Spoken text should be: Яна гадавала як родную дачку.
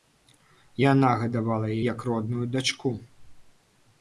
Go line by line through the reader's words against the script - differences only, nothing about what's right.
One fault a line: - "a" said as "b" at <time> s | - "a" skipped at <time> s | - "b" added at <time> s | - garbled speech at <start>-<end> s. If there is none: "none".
none